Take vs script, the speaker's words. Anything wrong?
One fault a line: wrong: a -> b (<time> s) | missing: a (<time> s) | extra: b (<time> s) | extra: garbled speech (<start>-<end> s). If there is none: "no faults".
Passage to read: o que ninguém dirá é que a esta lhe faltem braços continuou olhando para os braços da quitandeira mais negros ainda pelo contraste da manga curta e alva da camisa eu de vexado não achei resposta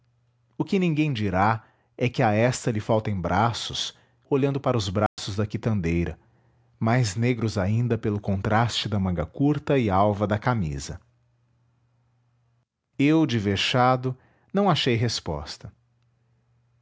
missing: continuou (3.9 s)